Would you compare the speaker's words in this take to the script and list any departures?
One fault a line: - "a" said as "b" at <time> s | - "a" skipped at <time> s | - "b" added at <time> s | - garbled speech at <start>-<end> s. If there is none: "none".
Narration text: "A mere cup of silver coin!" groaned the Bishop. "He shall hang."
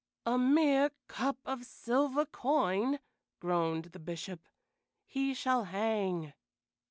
none